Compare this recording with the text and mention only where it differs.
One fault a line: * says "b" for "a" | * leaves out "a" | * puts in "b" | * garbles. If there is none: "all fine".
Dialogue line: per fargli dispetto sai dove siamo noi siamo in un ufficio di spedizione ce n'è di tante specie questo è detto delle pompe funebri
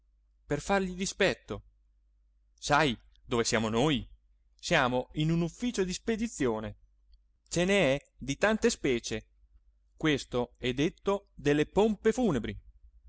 all fine